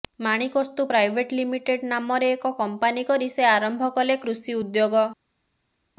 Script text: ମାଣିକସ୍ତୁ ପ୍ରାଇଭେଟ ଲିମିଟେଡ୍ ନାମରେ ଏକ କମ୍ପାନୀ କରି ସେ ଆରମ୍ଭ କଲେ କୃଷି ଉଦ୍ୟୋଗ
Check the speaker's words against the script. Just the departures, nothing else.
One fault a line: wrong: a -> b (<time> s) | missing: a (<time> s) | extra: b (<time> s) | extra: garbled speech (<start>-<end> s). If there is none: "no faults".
no faults